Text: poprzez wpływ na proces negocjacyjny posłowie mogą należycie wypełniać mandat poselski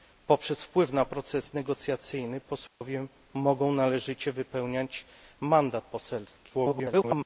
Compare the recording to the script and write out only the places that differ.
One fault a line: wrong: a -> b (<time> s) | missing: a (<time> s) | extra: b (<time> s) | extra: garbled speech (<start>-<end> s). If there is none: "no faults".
extra: garbled speech (6.5-7.3 s)